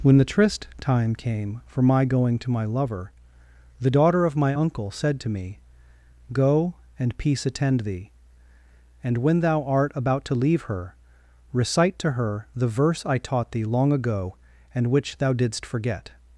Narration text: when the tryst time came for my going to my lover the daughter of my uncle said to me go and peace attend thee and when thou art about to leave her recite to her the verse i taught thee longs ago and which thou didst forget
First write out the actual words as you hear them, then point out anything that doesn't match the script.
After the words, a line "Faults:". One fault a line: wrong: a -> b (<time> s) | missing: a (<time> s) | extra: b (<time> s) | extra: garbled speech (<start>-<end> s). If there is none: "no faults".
when the tryst time came for my going to my lover the daughter of my uncle said to me go and peace attend thee and when thou art about to leave her recite to her the verse i taught thee long ago and which thou didst forget
Faults:
wrong: longs -> long (13.6 s)